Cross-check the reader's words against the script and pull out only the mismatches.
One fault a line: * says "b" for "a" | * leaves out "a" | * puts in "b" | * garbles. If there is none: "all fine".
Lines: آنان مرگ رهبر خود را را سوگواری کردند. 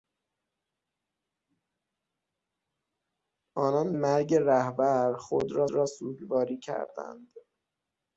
all fine